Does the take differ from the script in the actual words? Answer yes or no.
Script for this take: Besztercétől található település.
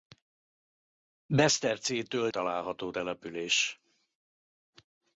no